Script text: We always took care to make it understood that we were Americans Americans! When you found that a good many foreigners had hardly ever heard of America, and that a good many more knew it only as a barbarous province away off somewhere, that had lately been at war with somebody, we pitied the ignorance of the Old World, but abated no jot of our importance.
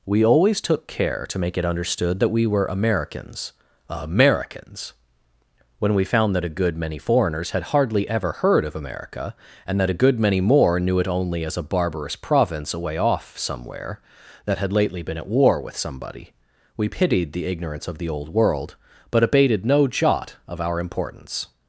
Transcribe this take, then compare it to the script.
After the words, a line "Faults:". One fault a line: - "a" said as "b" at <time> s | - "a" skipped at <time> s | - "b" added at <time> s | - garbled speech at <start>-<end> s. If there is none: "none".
We always took care to make it understood that we were Americans Americans! When we found that a good many foreigners had hardly ever heard of America, and that a good many more knew it only as a barbarous province away off somewhere, that had lately been at war with somebody, we pitied the ignorance of the Old World, but abated no jot of our importance.
Faults:
- "you" said as "we" at 5.9 s